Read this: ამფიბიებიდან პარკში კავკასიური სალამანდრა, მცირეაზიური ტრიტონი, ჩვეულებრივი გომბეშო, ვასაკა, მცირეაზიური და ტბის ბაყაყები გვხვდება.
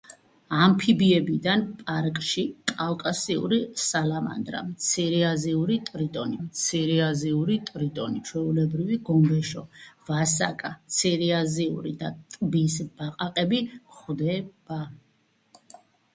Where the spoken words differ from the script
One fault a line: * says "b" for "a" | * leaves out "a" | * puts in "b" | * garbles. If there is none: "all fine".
* puts in "მცირეაზიური ტრიტონი"